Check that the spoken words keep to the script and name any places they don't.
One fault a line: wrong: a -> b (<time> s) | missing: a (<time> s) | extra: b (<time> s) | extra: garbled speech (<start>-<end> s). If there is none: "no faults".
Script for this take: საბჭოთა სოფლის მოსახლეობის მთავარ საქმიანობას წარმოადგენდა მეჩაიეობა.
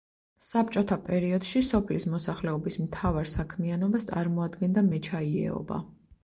extra: პერიოდში (1.1 s)